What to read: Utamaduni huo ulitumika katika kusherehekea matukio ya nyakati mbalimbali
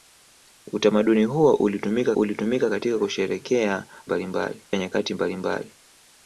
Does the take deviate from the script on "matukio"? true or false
true